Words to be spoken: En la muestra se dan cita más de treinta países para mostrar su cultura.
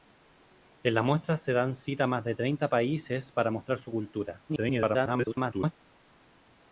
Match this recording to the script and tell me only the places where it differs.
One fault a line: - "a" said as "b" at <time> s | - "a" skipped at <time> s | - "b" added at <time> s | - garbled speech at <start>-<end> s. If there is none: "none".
- garbled speech at 4.5-5.7 s